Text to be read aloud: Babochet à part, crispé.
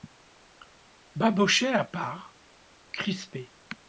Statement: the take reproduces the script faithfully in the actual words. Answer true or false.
true